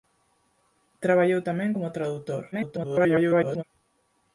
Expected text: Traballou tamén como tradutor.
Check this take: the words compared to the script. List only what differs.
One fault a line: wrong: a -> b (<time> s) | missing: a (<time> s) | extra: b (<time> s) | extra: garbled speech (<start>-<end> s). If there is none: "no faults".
extra: garbled speech (2.5-3.6 s)